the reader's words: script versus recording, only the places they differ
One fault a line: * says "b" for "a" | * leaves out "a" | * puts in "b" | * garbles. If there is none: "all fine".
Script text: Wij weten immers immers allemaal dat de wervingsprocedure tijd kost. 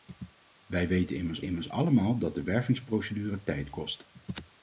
all fine